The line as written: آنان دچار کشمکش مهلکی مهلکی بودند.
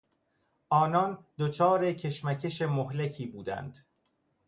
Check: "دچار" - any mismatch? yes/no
no